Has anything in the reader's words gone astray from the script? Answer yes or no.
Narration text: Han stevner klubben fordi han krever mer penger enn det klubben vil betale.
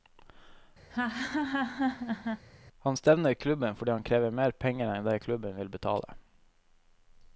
no